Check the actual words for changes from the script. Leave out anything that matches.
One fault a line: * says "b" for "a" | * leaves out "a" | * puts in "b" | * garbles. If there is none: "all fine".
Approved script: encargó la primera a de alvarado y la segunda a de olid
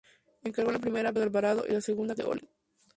all fine